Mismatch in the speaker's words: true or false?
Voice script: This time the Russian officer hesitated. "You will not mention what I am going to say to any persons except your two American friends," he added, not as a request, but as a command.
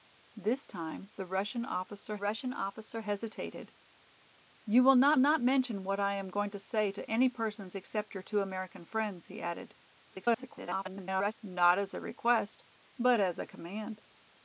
true